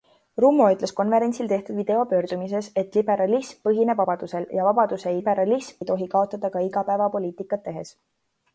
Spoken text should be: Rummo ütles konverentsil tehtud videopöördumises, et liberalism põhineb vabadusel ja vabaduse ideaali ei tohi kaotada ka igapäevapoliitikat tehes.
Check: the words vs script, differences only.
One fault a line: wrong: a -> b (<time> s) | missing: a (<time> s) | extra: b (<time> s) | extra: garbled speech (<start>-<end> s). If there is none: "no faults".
wrong: ideaali -> liberalism (5.2 s)